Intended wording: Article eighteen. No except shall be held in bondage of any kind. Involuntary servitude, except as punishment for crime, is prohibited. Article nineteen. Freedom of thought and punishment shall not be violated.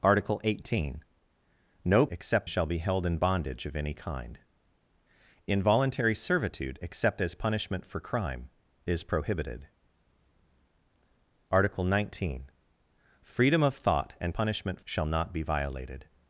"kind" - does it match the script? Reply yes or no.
yes